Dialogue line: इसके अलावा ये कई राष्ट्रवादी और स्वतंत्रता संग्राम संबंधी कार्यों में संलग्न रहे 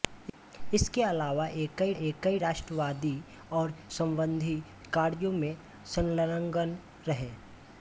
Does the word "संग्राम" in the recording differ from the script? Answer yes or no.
yes